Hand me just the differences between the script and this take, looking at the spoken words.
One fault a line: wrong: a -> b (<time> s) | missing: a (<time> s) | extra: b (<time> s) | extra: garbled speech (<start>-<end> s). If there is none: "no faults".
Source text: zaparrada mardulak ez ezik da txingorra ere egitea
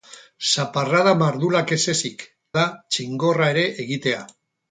no faults